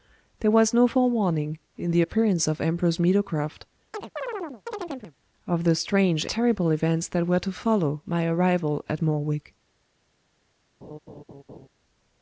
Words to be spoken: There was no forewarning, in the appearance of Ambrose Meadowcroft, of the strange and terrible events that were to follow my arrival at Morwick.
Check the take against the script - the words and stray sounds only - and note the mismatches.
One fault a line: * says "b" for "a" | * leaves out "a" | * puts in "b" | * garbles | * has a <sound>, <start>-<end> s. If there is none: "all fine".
* has a chirp, 3.9-5.2 s
* leaves out "and"
* has a laugh, 10.8-11.7 s